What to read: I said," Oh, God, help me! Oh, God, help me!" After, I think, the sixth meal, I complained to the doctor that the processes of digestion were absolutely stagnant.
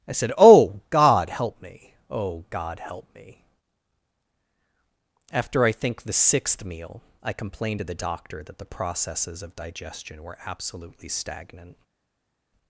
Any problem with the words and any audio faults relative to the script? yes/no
no